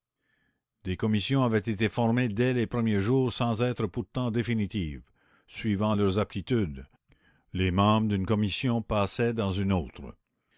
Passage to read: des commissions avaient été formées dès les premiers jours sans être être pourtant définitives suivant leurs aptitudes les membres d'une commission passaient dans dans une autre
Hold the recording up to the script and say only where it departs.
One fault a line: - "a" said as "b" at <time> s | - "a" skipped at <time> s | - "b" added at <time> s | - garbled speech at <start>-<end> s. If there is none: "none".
- "être" skipped at 3.9 s
- "dans" skipped at 9.5 s